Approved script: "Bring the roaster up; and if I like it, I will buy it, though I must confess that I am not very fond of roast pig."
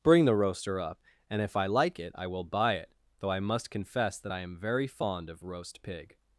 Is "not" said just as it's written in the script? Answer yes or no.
no